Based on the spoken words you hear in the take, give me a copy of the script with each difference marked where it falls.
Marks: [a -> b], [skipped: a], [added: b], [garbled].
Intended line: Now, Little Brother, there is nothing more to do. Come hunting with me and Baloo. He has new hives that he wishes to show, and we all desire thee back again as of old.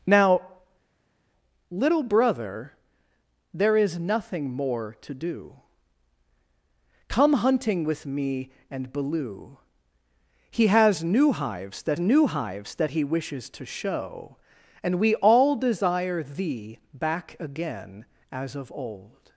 Now, Little Brother, there is nothing more to do. Come hunting with me and Baloo. He has new hives that [added: new hives that] he wishes to show, and we all desire thee back again as of old.